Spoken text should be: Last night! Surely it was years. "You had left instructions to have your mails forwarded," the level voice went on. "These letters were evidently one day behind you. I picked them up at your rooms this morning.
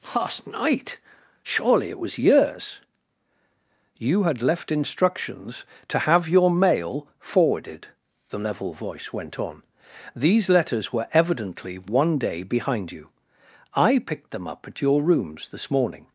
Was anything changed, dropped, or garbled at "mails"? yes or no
yes